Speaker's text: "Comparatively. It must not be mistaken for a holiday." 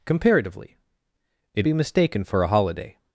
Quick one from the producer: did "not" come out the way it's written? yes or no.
no